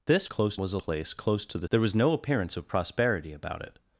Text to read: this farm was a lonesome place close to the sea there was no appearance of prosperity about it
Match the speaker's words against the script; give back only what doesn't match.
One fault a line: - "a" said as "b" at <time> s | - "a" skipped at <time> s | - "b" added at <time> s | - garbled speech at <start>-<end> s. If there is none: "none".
- "farm" said as "close" at 0.2 s
- "lonesome" skipped at 0.8 s
- "sea" skipped at 1.7 s